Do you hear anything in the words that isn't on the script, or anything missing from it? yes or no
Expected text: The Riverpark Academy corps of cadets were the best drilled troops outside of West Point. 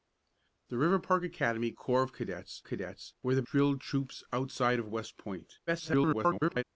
yes